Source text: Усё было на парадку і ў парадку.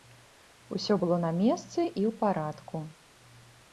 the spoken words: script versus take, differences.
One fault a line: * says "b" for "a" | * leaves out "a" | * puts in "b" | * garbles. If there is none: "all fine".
* says "месцы" for "парадку"